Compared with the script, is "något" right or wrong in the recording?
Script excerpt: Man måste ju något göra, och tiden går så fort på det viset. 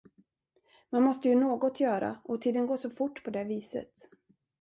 right